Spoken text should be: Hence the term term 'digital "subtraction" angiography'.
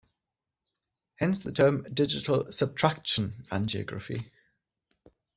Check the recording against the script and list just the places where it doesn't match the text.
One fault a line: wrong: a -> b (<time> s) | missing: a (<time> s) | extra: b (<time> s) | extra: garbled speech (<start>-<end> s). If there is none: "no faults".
missing: term (1.8 s)